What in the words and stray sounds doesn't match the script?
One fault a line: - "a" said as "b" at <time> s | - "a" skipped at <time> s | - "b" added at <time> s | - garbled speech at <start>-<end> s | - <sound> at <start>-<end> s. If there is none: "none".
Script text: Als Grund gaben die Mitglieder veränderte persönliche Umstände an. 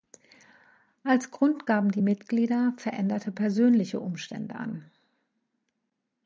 none